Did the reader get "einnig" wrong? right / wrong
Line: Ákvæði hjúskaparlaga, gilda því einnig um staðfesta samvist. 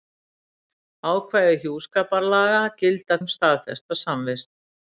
wrong